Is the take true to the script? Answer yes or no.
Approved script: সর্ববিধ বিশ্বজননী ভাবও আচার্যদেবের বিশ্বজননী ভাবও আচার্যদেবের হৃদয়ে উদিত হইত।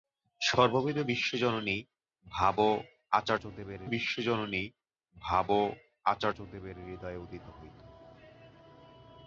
yes